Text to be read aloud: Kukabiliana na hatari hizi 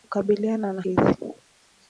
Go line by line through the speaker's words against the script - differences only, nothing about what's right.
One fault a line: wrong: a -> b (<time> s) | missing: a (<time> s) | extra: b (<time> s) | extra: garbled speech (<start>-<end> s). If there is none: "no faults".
missing: hatari (0.8 s)